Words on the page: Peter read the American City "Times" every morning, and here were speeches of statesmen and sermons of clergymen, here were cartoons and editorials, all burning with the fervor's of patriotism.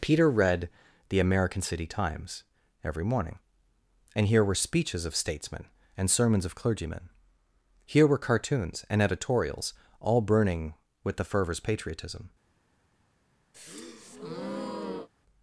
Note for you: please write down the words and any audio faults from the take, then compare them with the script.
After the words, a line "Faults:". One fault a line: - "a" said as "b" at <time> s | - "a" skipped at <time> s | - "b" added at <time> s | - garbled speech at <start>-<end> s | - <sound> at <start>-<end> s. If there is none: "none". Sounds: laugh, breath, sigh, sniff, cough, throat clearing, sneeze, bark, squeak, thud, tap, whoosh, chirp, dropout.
Peter read the American City "Times" every morning, and here were speeches of statesmen and sermons of clergymen, here were cartoons and editorials, all burning with the fervor's patriotism.
Faults:
- "of" skipped at 11.6 s
- breath at 13.5-15.1 s